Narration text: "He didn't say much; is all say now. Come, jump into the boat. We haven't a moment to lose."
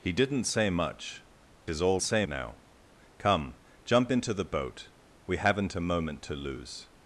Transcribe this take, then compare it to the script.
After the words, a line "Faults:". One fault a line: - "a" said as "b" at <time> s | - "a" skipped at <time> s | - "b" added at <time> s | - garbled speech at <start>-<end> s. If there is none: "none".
"He didn't say much; is all say now. Come, jump into the boat. We haven't a moment to lose."
Faults:
none